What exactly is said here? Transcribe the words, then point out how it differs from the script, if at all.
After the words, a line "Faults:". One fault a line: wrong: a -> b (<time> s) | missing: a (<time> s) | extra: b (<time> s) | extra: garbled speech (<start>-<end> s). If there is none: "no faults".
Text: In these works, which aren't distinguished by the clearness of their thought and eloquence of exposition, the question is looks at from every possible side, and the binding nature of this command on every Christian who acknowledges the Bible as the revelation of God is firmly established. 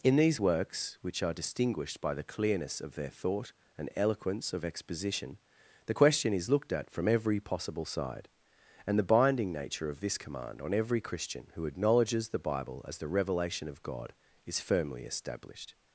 In these works, which are distinguished by the clearness of their thought and eloquence of exposition, the question is looked at from every possible side, and the binding nature of this command on every Christian who acknowledges the Bible as the revelation of God is firmly established.
Faults:
wrong: aren't -> are (1.2 s)
wrong: looks -> looked (6.5 s)